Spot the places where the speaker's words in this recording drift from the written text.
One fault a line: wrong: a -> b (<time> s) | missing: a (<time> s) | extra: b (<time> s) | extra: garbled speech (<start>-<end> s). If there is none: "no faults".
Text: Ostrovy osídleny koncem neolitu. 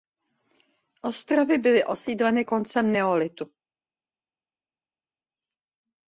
extra: byly (1.6 s)